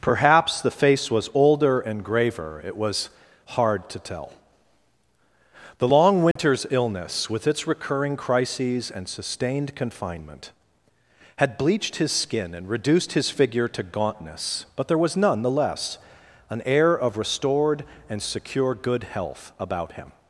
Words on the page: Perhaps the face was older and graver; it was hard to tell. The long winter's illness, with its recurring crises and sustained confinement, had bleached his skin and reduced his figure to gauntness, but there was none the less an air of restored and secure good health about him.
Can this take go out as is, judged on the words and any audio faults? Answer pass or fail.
fail